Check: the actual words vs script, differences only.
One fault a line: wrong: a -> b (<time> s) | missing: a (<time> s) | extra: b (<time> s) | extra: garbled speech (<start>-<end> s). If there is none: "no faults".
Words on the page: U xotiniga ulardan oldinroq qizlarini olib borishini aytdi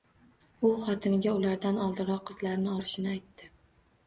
missing: olib (2.8 s)